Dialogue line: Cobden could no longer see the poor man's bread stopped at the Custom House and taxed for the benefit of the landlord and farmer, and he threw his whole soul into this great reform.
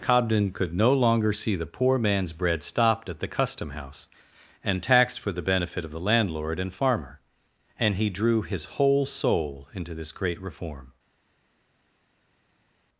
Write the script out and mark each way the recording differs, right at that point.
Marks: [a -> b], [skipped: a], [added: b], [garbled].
Cobden could no longer see the poor man's bread stopped at the Custom House and taxed for the benefit of the landlord and farmer, and he [threw -> drew] his whole soul into this great reform.